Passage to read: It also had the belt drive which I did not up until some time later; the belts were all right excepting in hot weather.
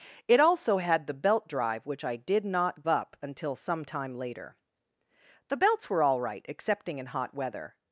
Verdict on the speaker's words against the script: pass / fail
pass